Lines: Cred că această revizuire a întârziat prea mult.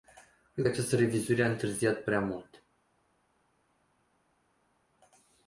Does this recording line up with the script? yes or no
yes